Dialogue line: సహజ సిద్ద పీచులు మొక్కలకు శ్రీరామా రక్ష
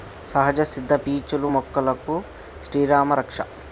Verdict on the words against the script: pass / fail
pass